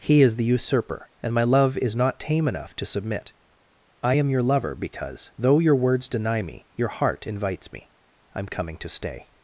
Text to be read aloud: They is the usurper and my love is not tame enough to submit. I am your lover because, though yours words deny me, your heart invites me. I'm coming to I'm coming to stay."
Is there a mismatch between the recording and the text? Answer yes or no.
yes